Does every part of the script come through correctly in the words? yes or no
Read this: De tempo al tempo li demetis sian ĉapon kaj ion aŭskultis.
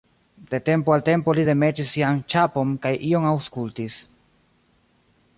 yes